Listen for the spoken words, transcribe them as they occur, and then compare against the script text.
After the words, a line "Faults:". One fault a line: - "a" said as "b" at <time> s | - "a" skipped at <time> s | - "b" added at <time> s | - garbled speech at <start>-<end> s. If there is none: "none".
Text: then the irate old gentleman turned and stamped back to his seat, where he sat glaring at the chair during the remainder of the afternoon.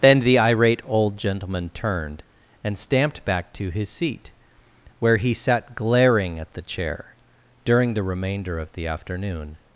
then the irate old gentleman turned and stamped back to his seat, where he sat glaring at the chair during the remainder of the afternoon.
Faults:
none